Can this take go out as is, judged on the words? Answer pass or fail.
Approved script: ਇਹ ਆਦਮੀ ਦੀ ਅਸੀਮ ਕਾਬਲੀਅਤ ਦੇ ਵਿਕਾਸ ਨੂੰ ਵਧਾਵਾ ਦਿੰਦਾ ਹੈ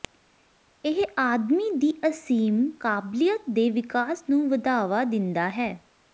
pass